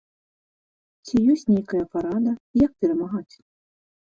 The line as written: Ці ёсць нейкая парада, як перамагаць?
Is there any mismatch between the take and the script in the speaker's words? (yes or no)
no